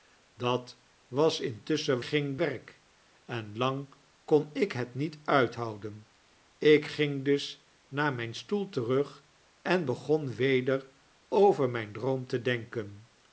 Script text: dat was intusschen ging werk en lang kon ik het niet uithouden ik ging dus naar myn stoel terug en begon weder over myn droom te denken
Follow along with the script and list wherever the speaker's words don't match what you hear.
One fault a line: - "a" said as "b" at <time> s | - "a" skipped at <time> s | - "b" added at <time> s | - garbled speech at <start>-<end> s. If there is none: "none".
none